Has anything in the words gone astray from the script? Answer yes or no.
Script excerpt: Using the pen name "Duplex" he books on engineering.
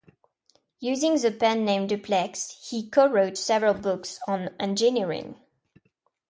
yes